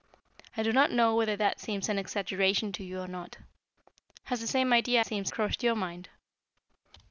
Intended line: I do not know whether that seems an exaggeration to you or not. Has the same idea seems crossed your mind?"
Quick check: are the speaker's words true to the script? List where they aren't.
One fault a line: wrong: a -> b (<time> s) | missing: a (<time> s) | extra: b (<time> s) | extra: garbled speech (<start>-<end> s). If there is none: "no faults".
no faults